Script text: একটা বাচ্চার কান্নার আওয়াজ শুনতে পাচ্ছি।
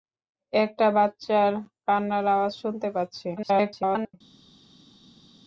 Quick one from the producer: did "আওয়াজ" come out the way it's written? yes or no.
yes